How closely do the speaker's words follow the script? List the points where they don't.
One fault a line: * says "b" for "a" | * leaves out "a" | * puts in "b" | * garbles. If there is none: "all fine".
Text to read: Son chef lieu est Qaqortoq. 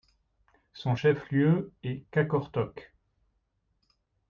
all fine